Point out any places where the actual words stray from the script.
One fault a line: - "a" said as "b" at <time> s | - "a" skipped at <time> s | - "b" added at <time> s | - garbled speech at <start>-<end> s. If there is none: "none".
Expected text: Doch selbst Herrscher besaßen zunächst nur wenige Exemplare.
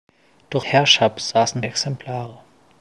- "selbst" skipped at 0.7 s
- "zunächst nur wenige" skipped at 1.6 s